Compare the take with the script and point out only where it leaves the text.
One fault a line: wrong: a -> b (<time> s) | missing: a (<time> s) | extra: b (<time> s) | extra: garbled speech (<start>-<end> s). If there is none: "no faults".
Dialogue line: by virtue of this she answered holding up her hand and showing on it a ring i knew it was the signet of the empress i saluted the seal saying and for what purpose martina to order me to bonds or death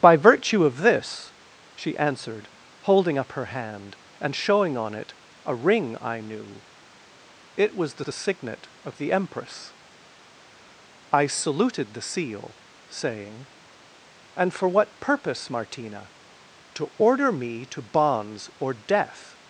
extra: the (8.0 s)